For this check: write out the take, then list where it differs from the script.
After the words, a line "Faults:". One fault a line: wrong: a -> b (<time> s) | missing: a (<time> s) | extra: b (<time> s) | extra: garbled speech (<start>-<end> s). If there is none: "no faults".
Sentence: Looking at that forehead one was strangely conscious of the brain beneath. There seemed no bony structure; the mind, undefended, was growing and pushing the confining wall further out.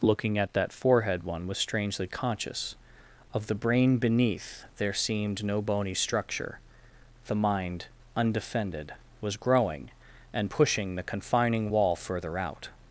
Looking at that forehead one was strangely conscious of the brain beneath. There seemed no bony structure; the mind, undefended, was growing and pushing the confining wall further out.
Faults:
no faults